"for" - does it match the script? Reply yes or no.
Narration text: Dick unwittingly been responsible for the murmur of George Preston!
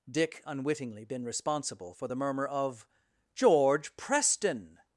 yes